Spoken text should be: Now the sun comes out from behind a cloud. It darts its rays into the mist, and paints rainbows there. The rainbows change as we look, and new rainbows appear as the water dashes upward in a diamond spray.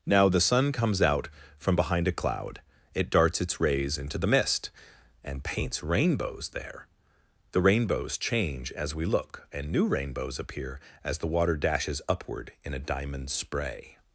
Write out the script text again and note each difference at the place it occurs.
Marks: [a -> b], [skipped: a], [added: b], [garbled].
Now the sun comes out from behind a cloud. It darts its rays into the mist, and paints rainbows there. The rainbows change as we look, and new rainbows appear as the water dashes upward in a diamond spray.